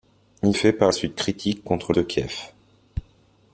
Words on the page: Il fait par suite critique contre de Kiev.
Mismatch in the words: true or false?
false